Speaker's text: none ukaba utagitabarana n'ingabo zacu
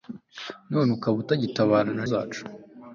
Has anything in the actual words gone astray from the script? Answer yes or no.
yes